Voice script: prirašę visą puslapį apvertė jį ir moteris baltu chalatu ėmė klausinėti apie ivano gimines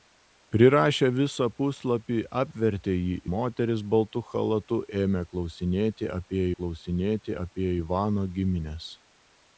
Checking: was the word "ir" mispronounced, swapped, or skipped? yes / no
yes